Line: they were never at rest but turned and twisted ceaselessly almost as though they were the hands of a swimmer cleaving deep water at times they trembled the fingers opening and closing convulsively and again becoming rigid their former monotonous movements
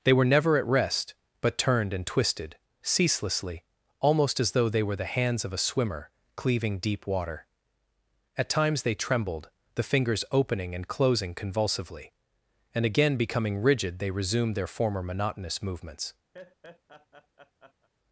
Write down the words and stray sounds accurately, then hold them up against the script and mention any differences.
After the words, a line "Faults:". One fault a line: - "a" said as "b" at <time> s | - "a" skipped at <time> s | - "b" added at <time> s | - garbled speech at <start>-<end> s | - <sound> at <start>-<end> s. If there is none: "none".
they were never at rest but turned and twisted ceaselessly almost as though they were the hands of a swimmer cleaving deep water at times they trembled the fingers opening and closing convulsively and again becoming rigid they resumed their former monotonous movements
Faults:
- "they resumed" added at 14.0 s
- laugh at 16.3-17.9 s